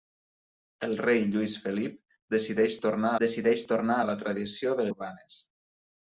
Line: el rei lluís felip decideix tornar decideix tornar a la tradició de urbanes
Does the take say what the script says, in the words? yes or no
yes